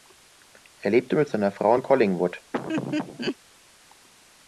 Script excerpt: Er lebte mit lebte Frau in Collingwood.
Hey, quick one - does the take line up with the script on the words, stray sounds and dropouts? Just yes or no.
no